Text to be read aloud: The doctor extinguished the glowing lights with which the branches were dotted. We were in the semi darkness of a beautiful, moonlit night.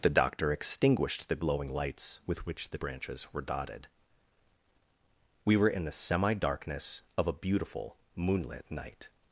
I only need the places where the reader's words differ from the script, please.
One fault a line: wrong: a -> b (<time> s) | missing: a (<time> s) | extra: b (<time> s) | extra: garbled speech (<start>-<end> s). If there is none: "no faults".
no faults